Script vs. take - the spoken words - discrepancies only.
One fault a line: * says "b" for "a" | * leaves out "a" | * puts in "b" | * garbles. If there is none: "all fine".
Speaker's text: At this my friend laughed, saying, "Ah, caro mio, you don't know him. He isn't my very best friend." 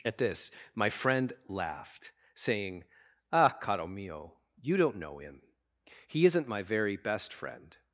all fine